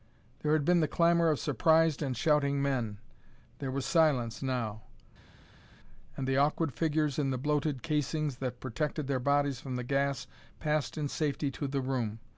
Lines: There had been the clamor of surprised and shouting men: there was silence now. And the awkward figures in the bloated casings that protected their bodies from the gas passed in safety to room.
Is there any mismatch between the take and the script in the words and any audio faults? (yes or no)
yes